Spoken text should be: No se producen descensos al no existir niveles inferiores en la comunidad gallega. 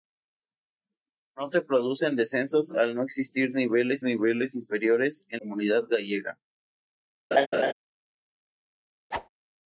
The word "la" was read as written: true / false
false